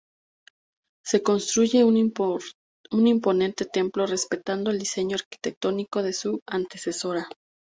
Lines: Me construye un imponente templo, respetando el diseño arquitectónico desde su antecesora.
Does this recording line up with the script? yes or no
no